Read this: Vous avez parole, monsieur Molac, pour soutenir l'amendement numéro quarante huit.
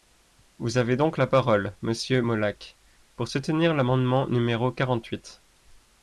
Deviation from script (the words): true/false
true